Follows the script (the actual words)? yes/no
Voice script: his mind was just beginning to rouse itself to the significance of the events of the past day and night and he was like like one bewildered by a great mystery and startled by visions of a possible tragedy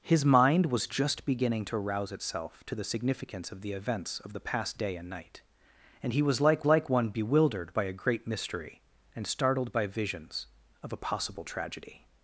yes